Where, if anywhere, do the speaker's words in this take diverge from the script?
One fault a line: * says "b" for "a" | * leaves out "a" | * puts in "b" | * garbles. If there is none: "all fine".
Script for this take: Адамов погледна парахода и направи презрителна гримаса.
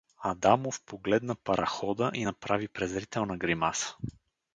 all fine